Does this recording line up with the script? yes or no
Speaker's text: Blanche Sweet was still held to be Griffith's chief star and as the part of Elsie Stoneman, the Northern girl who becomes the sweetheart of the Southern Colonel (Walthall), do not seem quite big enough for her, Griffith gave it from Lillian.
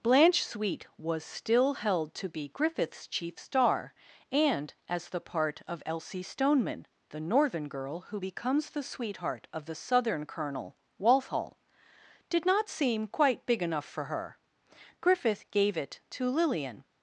no